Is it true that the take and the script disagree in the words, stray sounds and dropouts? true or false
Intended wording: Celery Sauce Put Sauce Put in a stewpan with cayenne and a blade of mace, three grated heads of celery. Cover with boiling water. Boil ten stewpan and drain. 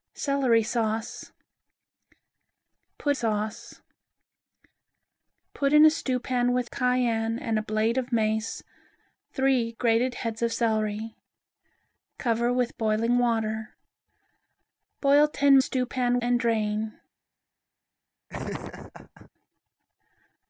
true